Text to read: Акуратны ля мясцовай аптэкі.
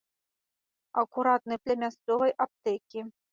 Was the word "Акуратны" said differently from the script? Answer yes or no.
no